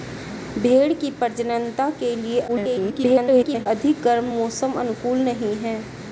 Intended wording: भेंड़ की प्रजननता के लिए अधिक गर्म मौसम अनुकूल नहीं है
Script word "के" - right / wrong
right